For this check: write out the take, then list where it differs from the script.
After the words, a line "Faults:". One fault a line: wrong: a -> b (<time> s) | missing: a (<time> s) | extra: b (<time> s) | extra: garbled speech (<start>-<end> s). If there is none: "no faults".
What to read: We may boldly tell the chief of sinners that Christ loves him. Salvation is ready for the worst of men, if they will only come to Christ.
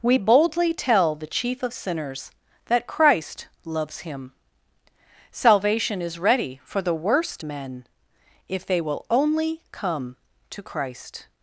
We boldly tell the chief of sinners that Christ loves him. Salvation is ready for the worst men, if they will only come to Christ.
Faults:
missing: may (0.2 s)
missing: of (7.4 s)